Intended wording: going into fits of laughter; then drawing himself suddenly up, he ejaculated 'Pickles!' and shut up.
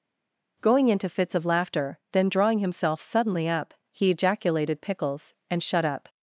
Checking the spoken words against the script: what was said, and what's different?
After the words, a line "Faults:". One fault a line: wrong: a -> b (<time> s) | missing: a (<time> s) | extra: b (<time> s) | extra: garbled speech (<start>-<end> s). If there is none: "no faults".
going into fits of laughter; then drawing himself suddenly up, he ejaculated 'Pickles!' and shut up.
Faults:
no faults